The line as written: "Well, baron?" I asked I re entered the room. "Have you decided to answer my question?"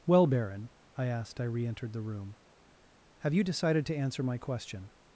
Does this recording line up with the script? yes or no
yes